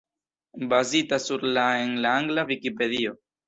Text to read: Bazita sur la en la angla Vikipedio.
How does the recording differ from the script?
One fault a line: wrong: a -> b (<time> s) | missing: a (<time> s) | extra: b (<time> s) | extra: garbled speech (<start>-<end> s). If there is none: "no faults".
no faults